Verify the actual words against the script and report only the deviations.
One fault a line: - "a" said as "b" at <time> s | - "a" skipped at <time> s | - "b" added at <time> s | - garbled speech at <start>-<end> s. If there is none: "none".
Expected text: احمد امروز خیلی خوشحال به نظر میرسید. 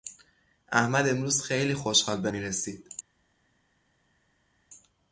- "نظر" skipped at 2.3 s